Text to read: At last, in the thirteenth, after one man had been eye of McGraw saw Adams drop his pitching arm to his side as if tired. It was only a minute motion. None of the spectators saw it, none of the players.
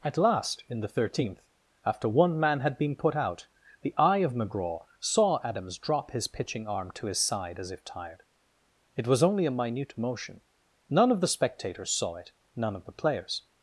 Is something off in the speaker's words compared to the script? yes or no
yes